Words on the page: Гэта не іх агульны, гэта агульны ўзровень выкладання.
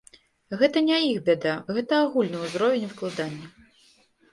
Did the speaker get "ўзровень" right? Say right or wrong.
right